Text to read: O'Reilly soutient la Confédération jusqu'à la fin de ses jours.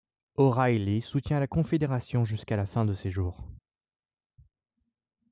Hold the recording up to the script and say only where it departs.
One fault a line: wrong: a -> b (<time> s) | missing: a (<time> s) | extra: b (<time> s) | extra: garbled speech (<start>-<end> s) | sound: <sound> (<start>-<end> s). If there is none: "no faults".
no faults